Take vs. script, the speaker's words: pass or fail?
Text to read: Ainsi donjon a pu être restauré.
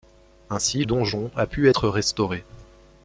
pass